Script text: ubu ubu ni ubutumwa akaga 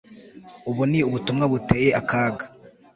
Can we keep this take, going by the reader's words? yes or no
no